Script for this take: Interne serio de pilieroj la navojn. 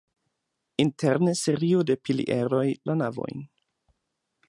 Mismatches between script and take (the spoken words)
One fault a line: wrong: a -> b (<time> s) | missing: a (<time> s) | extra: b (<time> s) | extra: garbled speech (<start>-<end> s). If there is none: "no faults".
no faults